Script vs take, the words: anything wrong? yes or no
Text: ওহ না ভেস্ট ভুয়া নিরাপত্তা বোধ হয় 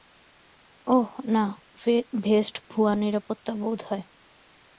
no